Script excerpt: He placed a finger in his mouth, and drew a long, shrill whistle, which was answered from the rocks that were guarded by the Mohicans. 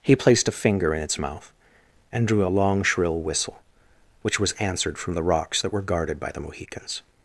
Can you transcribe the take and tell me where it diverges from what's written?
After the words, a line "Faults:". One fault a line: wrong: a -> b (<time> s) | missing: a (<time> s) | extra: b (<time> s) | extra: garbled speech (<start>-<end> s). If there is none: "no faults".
He placed a finger in its mouth, and drew a long, shrill whistle, which was answered from the rocks that were guarded by the Mohicans.
Faults:
wrong: his -> its (1.0 s)